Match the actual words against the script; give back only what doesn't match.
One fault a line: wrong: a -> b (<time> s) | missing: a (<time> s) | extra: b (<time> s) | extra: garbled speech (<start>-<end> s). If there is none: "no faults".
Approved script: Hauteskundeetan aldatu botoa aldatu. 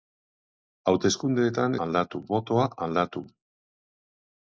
no faults